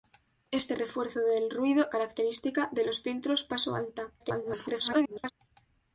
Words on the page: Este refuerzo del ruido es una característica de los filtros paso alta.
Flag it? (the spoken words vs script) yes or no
yes